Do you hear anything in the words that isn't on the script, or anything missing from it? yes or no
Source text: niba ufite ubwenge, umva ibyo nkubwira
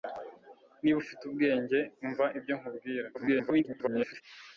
yes